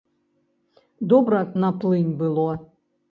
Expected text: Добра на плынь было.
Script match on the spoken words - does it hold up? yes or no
yes